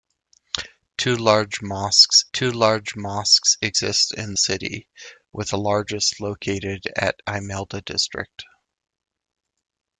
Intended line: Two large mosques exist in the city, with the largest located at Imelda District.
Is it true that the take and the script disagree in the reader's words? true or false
true